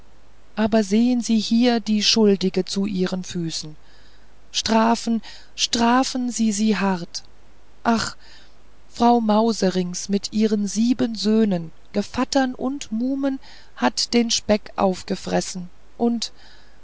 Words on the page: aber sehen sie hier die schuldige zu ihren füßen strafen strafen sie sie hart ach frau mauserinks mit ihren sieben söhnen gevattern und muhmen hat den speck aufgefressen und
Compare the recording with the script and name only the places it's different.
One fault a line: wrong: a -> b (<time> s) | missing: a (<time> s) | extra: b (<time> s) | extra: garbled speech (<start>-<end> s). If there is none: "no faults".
no faults